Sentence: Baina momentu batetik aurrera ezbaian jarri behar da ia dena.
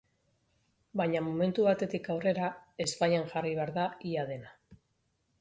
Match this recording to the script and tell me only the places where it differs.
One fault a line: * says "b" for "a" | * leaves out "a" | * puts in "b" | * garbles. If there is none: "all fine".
all fine